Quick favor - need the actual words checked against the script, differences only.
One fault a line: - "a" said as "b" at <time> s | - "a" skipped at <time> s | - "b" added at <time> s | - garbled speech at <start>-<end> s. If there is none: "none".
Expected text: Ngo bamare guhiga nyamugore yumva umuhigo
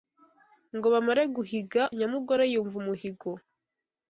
none